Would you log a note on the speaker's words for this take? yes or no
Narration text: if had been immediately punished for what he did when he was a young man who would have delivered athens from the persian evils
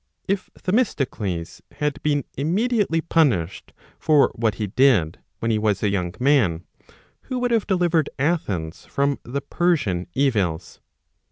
yes